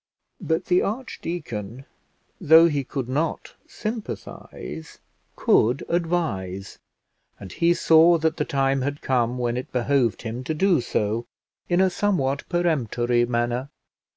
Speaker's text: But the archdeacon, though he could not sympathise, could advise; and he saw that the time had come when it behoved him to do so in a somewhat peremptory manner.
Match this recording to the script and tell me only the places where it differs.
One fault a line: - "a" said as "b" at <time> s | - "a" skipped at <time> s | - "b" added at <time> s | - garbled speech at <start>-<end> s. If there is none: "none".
none